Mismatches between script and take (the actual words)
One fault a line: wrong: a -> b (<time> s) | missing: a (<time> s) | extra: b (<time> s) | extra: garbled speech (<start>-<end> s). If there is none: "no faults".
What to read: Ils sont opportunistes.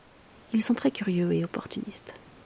extra: très curieux et (0.7 s)